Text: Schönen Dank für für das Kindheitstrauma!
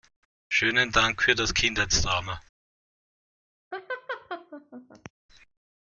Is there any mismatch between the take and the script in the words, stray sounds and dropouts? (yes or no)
yes